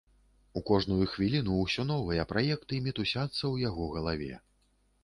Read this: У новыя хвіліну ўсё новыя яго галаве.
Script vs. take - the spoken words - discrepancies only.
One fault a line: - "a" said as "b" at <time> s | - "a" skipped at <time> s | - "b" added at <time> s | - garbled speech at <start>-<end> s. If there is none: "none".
- "новыя" said as "кожную" at 0.7 s
- "праекты мітусяцца ў" added at 2.3 s